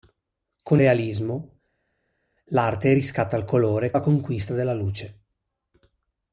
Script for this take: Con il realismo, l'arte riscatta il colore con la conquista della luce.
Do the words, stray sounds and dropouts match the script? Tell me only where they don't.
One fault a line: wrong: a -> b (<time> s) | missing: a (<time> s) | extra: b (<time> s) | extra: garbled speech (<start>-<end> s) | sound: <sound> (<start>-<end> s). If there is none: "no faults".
missing: il (0.8 s)
missing: con (3.9 s)